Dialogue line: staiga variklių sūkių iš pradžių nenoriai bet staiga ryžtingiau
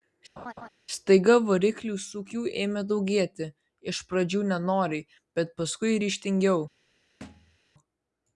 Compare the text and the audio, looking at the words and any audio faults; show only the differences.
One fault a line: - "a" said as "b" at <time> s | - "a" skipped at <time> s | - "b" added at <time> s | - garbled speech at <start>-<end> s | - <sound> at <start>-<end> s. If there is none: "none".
- laugh at 0.4-0.7 s
- "ėmė daugėti" added at 2.6 s
- "staiga" said as "paskui" at 5.6 s
- thud at 7.2-7.6 s